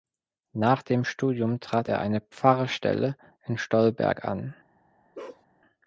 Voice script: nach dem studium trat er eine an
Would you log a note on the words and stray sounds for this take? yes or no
yes